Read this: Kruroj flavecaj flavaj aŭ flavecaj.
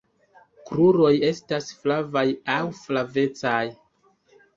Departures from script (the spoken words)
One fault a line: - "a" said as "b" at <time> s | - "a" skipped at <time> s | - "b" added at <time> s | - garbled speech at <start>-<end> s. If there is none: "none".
- "flavecaj" said as "estas" at 1.3 s